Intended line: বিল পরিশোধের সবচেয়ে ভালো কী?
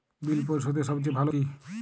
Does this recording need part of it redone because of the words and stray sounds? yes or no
no